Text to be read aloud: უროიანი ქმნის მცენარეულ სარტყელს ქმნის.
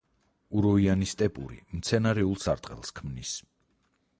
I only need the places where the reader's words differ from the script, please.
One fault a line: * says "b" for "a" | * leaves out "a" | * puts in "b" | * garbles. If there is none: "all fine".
* says "სტეპური" for "ქმნის"